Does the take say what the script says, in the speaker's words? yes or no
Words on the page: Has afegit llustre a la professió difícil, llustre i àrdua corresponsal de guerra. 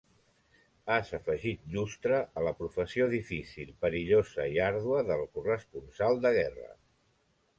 no